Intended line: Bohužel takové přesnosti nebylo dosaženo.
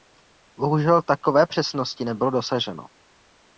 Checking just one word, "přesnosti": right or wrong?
right